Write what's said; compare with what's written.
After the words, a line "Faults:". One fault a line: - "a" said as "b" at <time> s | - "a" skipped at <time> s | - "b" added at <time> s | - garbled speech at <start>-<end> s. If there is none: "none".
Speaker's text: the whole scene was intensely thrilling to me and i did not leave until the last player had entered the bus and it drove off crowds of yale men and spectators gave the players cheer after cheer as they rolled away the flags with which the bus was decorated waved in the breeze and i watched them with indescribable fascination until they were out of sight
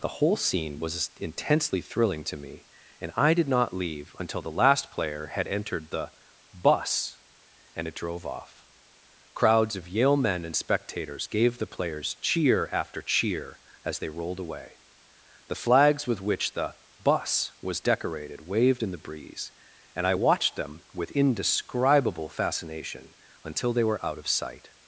the whole scene was intensely thrilling to me and i did not leave until the last player had entered the bus and it drove off crowds of yale men and spectators gave the players cheer after cheer as they rolled away the flags with which the bus was decorated waved in the breeze and i watched them with indescribable fascination until they were out of sight
Faults:
none